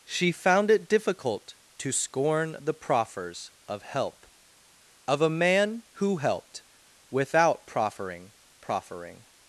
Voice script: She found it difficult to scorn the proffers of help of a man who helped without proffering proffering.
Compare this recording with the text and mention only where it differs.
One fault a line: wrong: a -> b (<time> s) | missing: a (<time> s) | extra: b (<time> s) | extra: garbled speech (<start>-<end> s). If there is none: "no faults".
no faults